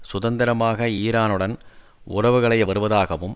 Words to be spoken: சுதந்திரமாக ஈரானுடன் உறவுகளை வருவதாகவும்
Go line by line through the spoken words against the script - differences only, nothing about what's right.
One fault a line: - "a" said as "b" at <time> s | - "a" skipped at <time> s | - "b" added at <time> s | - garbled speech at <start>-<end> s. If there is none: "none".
none